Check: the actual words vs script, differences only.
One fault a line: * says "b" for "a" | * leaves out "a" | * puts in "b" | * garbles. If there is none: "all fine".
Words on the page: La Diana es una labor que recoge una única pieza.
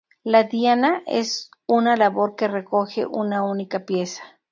all fine